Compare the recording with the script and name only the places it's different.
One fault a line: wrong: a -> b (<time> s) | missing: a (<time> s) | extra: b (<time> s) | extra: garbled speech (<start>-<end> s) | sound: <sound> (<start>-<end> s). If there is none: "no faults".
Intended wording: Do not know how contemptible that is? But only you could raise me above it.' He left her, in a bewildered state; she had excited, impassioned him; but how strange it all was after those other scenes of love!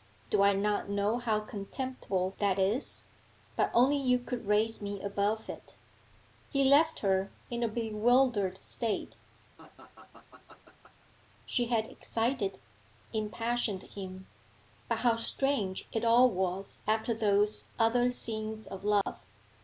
extra: I (0.4 s)
sound: laugh (9.6-11.1 s)
sound: dropout (19.0-19.1 s)